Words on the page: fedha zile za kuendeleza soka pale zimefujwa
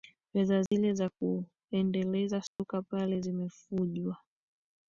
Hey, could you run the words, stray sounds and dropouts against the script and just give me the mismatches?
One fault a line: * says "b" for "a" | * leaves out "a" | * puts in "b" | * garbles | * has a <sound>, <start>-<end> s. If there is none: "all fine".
* has a dropout, 0.7-0.7 s
* has a dropout, 2.5-2.6 s